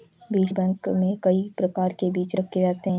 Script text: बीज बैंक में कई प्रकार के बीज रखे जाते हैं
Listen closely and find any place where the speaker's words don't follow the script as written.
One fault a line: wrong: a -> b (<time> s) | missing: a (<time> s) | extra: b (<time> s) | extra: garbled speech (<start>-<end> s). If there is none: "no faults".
no faults